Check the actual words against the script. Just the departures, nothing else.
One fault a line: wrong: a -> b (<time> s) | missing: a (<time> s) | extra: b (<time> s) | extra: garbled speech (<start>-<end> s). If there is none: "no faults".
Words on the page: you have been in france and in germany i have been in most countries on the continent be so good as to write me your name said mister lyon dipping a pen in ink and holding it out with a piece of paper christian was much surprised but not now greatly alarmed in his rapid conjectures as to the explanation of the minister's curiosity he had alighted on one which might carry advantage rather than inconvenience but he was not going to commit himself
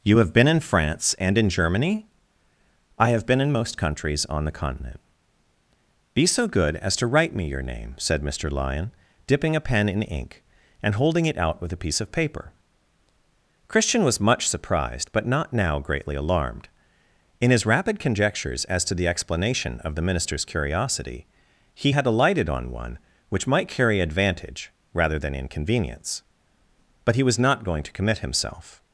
no faults